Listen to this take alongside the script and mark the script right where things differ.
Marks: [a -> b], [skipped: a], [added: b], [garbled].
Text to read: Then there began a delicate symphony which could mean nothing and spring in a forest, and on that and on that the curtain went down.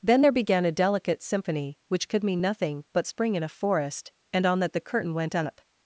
Then there began a delicate symphony which could mean nothing [and -> but] spring in a forest, and on that [skipped: and on that] the curtain went [down. -> up]